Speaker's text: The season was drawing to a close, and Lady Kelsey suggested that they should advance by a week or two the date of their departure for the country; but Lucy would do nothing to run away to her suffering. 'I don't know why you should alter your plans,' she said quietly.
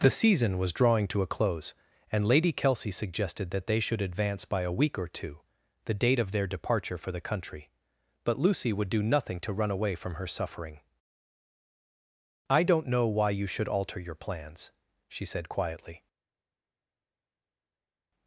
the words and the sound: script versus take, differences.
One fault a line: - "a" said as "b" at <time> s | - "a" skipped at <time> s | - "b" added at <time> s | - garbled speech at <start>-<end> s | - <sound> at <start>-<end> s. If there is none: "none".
- "to" said as "from" at 10.0 s